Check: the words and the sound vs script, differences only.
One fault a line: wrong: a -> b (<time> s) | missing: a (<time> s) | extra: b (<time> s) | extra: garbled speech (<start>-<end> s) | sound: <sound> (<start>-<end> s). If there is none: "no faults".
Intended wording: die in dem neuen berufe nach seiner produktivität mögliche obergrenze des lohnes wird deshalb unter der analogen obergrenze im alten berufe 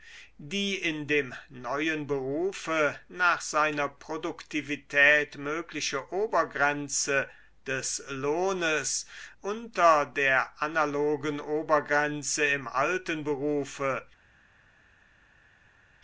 missing: wird deshalb (9.1 s)